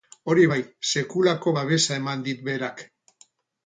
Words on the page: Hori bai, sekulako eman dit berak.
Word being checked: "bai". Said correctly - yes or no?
yes